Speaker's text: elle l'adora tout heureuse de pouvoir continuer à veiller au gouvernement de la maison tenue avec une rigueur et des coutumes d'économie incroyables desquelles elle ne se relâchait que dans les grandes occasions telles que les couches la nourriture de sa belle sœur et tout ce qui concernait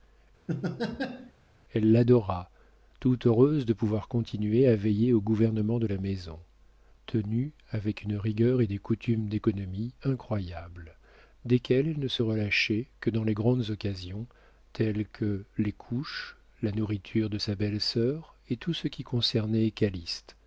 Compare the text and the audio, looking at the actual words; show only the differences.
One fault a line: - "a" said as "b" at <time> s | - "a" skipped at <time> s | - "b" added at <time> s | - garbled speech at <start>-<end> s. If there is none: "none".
none